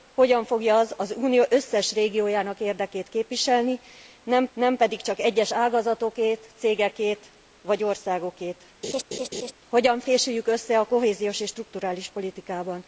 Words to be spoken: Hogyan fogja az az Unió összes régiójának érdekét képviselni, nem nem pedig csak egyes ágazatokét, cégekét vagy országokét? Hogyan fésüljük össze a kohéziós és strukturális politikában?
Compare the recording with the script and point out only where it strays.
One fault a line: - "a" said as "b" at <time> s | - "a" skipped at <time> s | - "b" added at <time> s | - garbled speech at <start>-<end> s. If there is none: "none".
none